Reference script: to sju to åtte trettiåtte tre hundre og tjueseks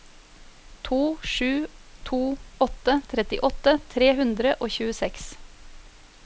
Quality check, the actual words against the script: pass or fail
pass